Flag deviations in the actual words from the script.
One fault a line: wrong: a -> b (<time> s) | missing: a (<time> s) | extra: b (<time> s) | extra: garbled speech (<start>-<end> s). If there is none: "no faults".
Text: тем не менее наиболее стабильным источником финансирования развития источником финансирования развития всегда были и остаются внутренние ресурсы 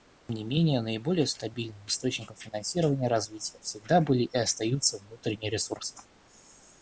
missing: источником финансирования развития (3.6 s)